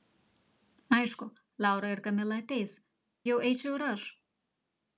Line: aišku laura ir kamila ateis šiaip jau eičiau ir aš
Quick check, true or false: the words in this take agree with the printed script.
false